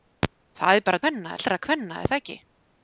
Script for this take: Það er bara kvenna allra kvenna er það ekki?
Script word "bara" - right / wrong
right